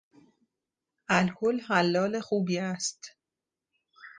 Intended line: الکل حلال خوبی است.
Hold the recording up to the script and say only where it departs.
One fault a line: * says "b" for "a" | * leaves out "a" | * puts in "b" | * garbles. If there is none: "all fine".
all fine